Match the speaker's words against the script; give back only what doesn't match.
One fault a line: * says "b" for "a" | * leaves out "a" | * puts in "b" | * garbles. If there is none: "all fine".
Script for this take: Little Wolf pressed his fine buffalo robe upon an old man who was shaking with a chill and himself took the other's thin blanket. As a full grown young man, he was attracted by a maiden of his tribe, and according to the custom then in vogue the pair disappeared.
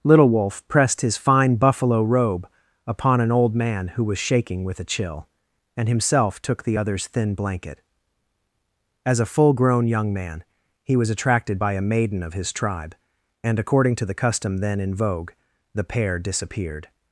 all fine